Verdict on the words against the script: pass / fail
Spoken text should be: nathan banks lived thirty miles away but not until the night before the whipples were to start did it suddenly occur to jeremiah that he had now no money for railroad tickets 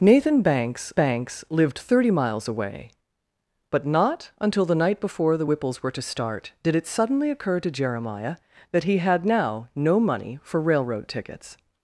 fail